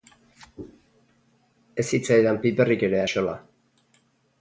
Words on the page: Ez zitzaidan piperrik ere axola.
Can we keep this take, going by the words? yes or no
yes